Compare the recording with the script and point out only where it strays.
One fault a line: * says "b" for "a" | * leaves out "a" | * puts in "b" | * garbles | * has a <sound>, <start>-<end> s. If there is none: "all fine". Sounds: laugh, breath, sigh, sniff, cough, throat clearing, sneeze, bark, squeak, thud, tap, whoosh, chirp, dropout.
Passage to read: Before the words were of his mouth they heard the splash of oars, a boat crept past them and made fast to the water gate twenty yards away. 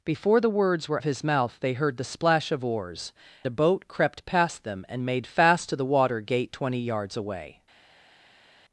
all fine